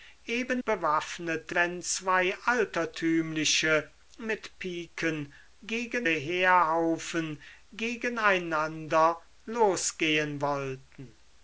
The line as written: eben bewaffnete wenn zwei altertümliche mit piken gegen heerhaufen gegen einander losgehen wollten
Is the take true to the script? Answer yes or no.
yes